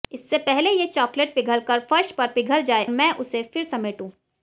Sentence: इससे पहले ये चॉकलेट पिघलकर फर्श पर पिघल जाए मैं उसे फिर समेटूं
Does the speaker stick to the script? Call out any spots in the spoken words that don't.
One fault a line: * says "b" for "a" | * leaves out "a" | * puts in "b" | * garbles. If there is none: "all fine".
all fine